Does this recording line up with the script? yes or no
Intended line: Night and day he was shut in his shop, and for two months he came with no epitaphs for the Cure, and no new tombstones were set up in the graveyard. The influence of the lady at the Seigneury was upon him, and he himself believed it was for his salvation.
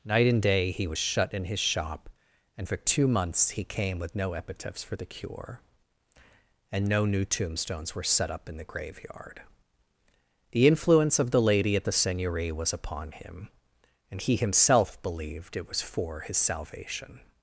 yes